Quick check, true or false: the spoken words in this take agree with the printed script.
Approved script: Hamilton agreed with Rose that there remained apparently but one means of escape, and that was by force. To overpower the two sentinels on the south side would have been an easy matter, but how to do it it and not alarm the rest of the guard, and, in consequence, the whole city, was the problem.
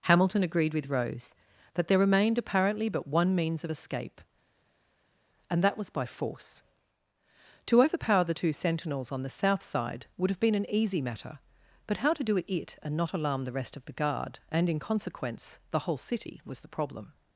true